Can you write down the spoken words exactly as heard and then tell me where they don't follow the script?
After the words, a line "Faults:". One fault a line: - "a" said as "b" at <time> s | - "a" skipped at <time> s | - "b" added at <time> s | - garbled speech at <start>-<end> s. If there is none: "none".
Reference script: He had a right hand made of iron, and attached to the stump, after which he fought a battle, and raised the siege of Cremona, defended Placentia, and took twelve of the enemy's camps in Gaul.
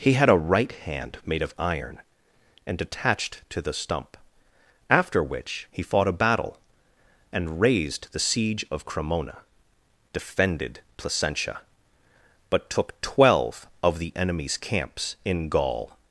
He had a right hand made of iron, and attached to the stump, after which he fought a battle, and raised the siege of Cremona, defended Placentia, but took twelve of the enemy's camps in Gaul.
Faults:
- "and" said as "but" at 12.5 s